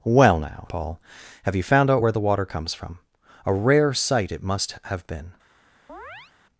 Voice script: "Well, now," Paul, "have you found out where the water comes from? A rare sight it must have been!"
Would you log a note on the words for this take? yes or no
no